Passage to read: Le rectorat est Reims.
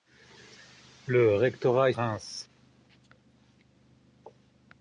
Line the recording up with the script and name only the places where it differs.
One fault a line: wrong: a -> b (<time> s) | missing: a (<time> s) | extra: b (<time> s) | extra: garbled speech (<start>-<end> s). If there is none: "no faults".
no faults